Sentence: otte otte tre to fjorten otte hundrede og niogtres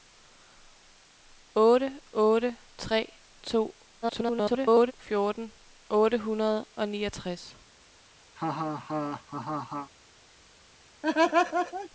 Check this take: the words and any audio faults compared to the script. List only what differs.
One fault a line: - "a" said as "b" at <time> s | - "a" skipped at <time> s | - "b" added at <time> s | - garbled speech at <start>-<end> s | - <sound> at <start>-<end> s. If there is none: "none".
- garbled speech at 4.0-4.9 s
- laugh at 8.4-9.9 s
- laugh at 11.0-11.9 s